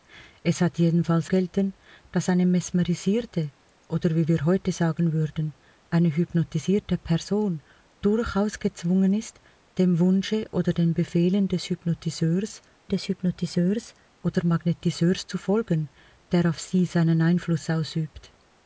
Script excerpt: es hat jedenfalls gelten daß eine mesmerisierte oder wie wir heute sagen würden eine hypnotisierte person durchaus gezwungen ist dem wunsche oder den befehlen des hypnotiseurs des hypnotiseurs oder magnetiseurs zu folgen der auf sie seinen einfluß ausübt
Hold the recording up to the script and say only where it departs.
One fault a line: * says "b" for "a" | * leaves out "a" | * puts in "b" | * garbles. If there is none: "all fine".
all fine